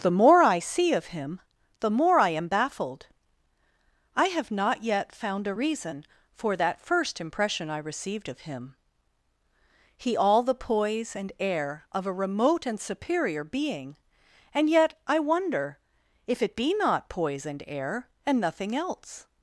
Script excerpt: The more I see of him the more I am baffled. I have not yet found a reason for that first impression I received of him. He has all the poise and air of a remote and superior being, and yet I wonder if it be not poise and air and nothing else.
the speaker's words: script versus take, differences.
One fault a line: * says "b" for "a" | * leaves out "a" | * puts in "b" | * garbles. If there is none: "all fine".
* leaves out "has"